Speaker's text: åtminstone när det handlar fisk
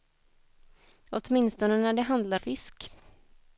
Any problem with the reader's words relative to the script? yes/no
no